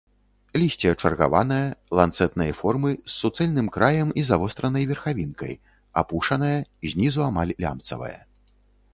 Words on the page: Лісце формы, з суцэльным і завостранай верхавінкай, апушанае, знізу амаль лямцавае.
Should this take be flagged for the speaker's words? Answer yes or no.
yes